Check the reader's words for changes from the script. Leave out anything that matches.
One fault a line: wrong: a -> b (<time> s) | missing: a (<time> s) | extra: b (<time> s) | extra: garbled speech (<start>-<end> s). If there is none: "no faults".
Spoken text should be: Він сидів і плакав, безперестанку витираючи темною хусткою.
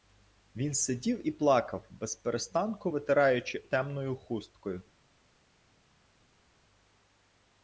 no faults